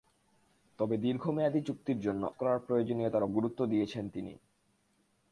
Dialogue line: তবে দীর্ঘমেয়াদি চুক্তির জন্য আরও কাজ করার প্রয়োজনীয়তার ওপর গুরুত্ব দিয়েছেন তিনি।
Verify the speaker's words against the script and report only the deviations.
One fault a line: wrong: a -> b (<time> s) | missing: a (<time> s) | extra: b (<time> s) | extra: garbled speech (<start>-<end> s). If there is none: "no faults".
missing: আরও কাজ (2.2 s)
missing: ওপর (3.3 s)